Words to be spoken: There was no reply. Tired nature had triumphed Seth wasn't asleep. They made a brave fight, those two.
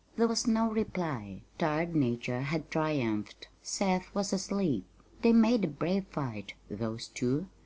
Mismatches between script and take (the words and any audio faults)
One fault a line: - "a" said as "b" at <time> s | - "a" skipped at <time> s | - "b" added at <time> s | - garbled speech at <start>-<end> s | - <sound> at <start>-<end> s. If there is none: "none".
- "wasn't" said as "was" at 4.2 s